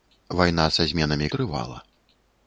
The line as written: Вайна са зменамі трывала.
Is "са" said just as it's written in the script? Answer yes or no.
yes